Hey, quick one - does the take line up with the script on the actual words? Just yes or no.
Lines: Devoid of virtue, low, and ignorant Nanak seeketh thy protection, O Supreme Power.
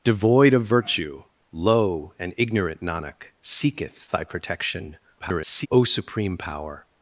no